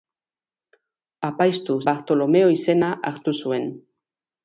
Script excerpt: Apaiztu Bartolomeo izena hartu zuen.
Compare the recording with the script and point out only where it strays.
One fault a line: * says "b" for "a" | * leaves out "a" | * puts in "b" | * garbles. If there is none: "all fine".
all fine